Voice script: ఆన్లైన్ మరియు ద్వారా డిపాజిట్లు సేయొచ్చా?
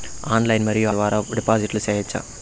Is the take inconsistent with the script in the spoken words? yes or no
no